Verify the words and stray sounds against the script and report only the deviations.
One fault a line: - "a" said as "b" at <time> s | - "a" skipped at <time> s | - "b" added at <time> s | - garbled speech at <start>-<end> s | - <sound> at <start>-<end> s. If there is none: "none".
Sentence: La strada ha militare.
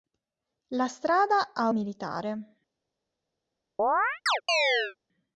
- chirp at 3.8-5.0 s